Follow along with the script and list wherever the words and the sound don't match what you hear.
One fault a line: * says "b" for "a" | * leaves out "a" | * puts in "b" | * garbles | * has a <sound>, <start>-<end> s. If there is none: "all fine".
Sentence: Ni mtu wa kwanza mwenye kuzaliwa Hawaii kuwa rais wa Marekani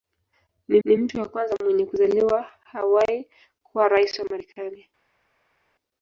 * puts in "ni"